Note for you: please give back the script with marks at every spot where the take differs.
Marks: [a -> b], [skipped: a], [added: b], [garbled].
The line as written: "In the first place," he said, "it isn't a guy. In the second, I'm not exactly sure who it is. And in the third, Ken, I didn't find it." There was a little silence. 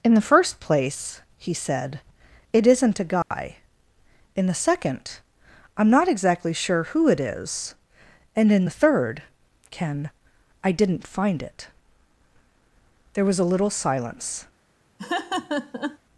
"In the first place," he said, "it isn't a guy. In the second, I'm not exactly sure who it is. And in the third, Ken, I didn't find it." There was a little silence.